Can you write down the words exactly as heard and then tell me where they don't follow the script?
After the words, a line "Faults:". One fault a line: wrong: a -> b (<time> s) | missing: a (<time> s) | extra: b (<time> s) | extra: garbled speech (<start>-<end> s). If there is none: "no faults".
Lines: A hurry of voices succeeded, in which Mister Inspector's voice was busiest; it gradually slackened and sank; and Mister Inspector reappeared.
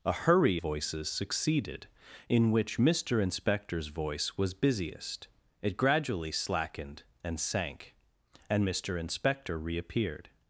A hurry voices succeeded, in which Mister Inspector's voice was busiest; it gradually slackened and sank; and Mister Inspector reappeared.
Faults:
missing: of (0.6 s)